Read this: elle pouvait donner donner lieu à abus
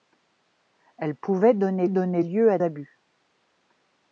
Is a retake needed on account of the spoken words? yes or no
no